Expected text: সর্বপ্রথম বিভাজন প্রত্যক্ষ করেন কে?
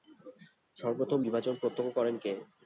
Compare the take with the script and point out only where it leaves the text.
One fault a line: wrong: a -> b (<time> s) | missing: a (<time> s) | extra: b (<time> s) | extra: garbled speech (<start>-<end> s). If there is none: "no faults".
no faults